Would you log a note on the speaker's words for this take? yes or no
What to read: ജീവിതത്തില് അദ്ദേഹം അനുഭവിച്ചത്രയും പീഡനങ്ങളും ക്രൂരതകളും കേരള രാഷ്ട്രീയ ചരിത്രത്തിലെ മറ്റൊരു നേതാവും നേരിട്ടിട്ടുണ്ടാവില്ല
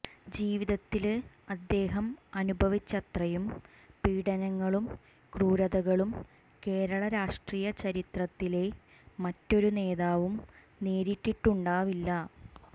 no